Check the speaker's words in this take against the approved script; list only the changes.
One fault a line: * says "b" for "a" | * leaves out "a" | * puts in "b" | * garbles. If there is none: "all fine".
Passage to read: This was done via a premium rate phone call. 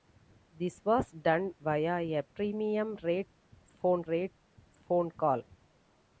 * puts in "rate phone"